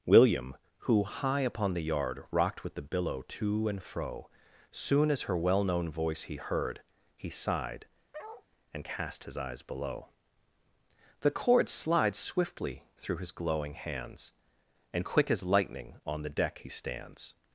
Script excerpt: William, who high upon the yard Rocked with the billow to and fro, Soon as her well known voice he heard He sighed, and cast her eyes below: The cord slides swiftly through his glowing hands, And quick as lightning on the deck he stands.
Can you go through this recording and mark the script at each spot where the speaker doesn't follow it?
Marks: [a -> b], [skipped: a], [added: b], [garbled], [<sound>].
William, who high upon the yard Rocked with the billow to and fro, Soon as her well known voice he heard He sighed, [bark] and cast [her -> his] eyes below: The cord slides swiftly through his glowing hands, And quick as lightning on the deck he stands.